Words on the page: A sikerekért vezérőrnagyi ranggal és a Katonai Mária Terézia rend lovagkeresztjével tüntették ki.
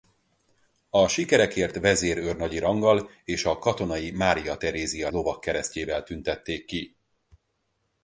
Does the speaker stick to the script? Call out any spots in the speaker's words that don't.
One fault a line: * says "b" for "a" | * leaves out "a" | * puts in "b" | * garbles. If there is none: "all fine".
* leaves out "rend"